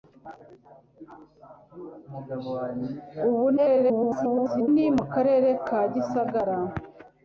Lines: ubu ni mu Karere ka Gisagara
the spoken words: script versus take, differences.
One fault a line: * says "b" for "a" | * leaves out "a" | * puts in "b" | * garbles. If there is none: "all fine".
* garbles